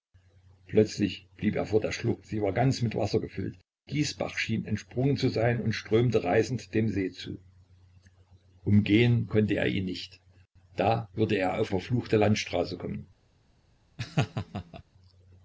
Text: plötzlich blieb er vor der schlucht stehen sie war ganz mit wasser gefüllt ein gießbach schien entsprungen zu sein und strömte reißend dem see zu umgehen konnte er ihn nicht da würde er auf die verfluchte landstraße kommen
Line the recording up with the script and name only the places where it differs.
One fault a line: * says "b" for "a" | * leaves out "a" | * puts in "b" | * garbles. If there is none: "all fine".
* leaves out "stehen"
* leaves out "ein"
* leaves out "die"